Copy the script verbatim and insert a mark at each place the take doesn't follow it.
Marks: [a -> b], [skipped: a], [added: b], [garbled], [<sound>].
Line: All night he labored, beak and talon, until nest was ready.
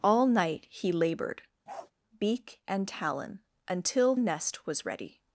All night he labored, [bark] beak and talon, until nest was ready.